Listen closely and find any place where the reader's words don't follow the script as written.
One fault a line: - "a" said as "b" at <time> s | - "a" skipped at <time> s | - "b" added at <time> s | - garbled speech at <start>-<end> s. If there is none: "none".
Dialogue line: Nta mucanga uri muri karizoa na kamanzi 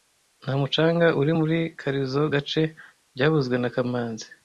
- "gace byavuzwe" added at 2.3 s